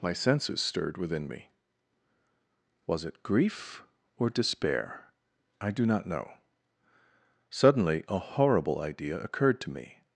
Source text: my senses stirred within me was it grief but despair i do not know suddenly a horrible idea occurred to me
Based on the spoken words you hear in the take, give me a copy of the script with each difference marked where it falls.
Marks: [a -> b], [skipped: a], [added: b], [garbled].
my senses stirred within me was it grief [but -> or] despair i do not know suddenly a horrible idea occurred to me